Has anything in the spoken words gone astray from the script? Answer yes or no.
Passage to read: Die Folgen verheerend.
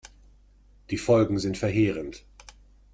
yes